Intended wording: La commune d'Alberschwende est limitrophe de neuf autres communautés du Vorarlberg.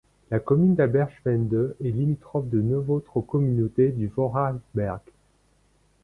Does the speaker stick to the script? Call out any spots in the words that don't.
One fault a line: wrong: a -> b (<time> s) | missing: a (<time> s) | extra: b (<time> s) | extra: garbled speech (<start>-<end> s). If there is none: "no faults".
no faults